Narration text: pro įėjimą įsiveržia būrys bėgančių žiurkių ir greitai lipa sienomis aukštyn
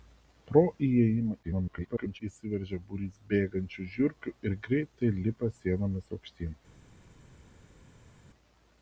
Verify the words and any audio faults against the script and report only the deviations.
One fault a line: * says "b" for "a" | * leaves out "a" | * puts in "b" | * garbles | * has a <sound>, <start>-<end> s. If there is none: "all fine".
* garbles